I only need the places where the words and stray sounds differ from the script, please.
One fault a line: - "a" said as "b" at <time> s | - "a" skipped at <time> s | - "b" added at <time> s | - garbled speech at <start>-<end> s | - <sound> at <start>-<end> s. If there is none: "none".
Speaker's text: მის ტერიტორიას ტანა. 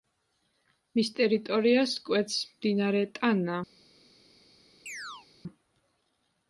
- "კვეთს მდინარე" added at 2.1 s
- chirp at 4.9-5.3 s